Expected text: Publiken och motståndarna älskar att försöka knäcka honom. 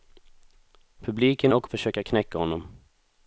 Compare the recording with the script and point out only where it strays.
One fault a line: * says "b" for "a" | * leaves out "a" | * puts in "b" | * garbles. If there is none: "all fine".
* leaves out "motståndarna älskar att"